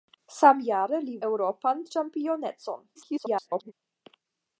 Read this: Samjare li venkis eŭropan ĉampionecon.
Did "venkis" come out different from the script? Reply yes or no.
yes